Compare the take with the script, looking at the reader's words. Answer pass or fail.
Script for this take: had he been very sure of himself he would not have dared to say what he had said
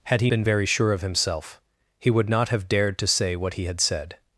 pass